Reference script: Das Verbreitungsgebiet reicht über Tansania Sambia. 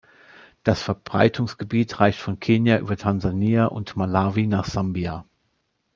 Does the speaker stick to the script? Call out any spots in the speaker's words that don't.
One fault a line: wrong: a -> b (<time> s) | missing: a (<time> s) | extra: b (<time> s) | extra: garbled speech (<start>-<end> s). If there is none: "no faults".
extra: von Kenia (2.2 s)
extra: und Malawi nach (3.7 s)